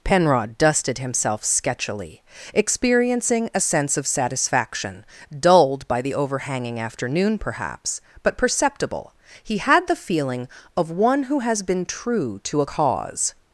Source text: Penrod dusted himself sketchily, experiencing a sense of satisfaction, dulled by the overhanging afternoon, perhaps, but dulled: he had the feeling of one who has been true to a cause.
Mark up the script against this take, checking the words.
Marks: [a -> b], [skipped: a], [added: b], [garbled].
Penrod dusted himself sketchily, experiencing a sense of satisfaction, dulled by the overhanging afternoon, perhaps, but [dulled: -> perceptible] he had the feeling of one who has been true to a cause.